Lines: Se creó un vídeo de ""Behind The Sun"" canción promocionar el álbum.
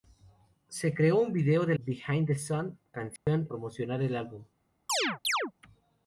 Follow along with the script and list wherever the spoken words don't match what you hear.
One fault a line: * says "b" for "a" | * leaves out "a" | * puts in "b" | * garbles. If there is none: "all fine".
all fine